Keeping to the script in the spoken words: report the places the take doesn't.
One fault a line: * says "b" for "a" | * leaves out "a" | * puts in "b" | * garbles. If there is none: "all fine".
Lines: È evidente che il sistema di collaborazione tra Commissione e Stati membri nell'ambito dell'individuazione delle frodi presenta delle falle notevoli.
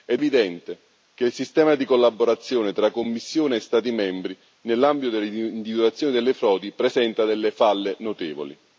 all fine